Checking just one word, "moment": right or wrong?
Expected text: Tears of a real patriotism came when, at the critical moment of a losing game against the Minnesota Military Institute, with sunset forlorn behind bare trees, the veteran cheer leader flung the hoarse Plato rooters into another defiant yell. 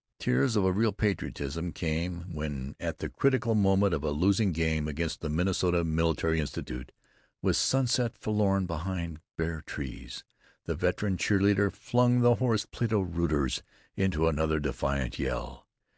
right